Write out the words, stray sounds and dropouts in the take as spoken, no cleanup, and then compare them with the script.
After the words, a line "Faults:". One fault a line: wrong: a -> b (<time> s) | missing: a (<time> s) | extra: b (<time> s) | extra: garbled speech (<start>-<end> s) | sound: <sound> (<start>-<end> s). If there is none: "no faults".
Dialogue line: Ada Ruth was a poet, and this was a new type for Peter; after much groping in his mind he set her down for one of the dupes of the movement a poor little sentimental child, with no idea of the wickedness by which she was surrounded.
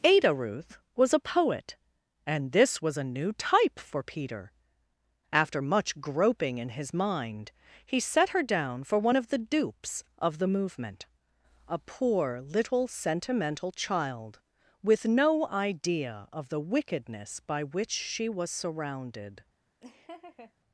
Ada Ruth was a poet, and this was a new type for Peter; after much groping in his mind he set her down for one of the dupes of the movement a poor little sentimental child, with no idea of the wickedness by which she was surrounded.
Faults:
sound: laugh (19.8-20.5 s)